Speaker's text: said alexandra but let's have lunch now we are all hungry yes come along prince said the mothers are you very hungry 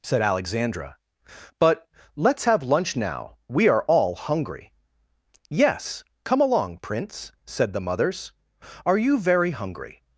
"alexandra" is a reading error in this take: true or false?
false